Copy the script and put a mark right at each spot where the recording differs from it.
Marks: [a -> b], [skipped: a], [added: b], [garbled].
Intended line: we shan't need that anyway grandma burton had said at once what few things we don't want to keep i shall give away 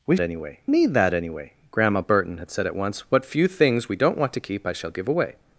we [shan't -> anyway] need that anyway grandma burton had said at once what few things we don't want to keep i shall give away